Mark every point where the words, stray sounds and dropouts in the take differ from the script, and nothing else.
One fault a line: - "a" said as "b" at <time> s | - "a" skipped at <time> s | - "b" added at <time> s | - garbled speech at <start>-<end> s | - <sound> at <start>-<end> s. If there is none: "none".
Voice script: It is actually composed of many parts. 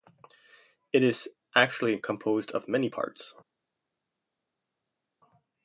none